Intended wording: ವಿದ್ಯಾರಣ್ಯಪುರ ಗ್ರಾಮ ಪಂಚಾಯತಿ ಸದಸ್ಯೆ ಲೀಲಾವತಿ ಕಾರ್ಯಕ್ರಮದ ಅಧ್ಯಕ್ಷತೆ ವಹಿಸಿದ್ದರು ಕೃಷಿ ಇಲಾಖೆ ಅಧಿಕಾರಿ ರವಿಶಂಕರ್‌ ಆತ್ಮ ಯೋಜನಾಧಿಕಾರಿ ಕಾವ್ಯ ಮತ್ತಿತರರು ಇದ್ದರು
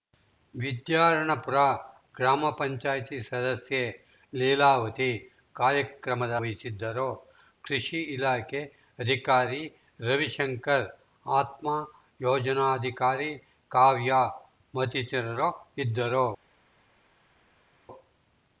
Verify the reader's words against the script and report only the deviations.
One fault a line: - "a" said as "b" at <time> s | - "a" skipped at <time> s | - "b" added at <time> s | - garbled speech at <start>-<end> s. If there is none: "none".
- "ಅಧ್ಯಕ್ಷತೆ" skipped at 6.3 s